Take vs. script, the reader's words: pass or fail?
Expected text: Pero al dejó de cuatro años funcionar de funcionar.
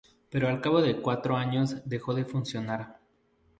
fail